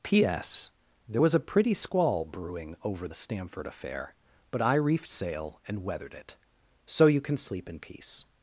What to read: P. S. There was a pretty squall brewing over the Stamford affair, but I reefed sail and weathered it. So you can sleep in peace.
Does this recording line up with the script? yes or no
yes